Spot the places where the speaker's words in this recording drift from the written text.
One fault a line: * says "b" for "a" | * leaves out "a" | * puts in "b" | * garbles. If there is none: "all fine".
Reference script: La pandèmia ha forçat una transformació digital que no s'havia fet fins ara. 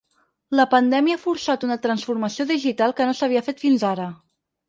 all fine